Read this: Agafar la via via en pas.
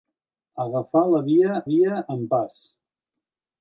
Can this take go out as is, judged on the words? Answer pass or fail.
pass